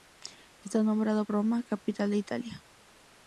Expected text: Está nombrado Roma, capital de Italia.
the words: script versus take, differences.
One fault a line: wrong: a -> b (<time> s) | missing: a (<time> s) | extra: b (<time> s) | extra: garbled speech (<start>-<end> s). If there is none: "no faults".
no faults